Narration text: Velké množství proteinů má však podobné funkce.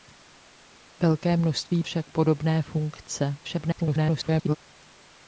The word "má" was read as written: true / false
false